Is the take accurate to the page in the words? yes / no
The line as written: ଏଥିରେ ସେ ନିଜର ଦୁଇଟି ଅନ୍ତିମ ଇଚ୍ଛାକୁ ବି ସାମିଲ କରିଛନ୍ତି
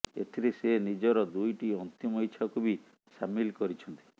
yes